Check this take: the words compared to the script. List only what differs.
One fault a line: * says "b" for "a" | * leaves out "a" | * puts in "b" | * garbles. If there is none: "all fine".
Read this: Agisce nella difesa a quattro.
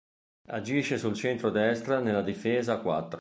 * puts in "sul centro destra"